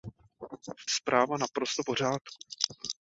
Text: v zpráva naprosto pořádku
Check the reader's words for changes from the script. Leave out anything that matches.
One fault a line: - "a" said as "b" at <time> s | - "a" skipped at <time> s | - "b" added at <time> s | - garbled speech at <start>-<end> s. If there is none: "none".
none